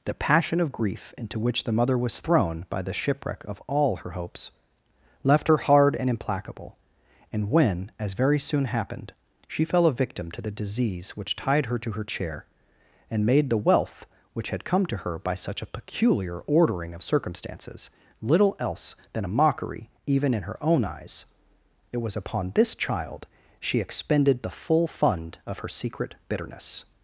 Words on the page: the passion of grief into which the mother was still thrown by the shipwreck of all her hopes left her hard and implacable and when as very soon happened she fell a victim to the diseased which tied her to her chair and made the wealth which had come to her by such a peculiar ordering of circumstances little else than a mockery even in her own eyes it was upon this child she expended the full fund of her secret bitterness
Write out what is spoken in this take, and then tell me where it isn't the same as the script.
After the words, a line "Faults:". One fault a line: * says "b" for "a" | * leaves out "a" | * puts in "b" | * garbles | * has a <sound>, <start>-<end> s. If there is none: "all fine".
the passion of grief into which the mother was thrown by the shipwreck of all her hopes left her hard and implacable and when as very soon happened she fell a victim to the disease which tied her to her chair and made the wealth which had come to her by such a peculiar ordering of circumstances little else than a mockery even in her own eyes it was upon this child she expended the full fund of her secret bitterness
Faults:
* leaves out "still"
* says "disease" for "diseased"